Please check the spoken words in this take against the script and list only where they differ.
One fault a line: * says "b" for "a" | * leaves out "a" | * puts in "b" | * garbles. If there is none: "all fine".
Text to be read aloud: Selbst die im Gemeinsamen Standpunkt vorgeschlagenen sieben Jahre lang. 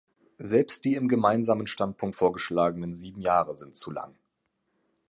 * puts in "sind zu"